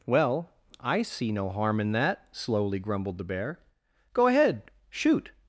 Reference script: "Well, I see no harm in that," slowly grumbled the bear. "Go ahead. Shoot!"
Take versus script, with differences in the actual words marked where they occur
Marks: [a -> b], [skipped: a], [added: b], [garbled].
"Well, I see no harm in that," slowly grumbled the bear. "Go ahead. Shoot!"